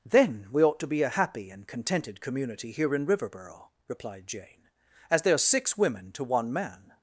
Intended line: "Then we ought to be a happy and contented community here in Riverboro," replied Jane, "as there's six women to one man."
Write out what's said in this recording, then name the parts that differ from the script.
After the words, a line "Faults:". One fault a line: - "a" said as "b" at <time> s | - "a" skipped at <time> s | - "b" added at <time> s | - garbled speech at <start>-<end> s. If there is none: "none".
"Then we ought to be a happy and contented community here in Riverboro," replied Jane, "as there's six women to one man."
Faults:
none